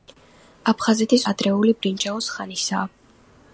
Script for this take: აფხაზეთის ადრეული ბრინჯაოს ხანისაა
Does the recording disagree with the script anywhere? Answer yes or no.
no